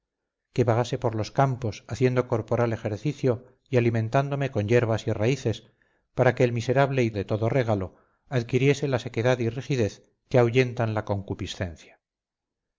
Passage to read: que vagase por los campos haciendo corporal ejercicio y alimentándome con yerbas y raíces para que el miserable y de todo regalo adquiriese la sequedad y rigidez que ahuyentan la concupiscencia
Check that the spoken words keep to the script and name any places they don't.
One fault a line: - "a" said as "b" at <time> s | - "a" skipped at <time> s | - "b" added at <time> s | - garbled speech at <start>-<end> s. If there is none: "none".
none